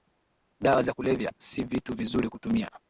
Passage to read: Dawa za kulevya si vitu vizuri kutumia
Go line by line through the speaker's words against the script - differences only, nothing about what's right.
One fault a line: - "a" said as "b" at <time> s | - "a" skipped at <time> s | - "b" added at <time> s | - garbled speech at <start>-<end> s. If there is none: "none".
none